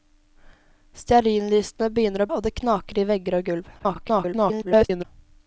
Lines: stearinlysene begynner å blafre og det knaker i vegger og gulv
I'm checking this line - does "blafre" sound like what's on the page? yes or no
no